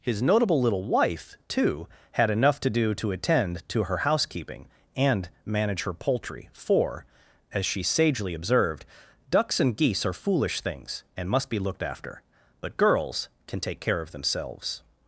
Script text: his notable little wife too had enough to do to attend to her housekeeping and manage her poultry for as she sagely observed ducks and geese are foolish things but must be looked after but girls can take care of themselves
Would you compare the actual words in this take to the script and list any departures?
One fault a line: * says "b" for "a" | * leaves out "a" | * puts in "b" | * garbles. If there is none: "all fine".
* says "and" for "but"